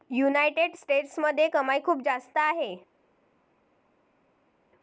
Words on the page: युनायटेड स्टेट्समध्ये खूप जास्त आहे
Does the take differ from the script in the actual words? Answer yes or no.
yes